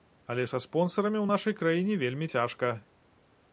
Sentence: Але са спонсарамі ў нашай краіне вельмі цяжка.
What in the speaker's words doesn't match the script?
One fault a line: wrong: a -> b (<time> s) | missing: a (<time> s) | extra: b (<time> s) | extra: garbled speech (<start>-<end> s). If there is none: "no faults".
no faults